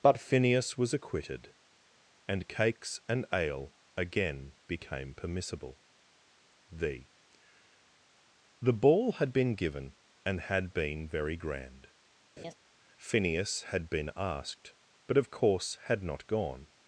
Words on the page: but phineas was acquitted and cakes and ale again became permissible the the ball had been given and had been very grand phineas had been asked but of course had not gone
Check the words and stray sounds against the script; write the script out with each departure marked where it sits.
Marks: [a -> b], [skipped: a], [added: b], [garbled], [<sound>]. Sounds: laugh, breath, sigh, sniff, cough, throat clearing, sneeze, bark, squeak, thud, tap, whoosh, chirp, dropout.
but phineas was acquitted and cakes and ale again became permissible the the ball had been given and had been very grand [laugh] phineas had been asked but of course had not gone